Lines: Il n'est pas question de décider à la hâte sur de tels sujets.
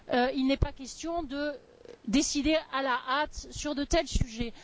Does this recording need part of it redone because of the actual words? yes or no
no